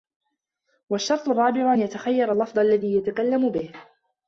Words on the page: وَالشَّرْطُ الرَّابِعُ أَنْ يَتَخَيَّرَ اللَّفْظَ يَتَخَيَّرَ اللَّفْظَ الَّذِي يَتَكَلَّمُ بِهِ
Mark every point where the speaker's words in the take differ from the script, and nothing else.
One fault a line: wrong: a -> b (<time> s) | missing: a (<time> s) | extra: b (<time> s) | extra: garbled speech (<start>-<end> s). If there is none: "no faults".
missing: يَتَخَيَّرَ اللَّفْظَ (2.6 s)